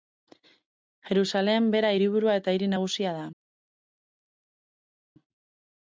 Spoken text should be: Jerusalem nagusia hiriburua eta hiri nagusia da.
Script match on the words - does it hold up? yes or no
no